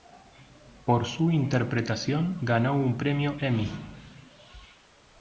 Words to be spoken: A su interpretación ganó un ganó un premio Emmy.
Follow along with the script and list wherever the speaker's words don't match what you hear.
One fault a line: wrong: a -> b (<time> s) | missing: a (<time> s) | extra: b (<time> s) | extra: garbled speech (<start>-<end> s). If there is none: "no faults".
wrong: A -> Por (0.8 s)
missing: ganó un (3.0 s)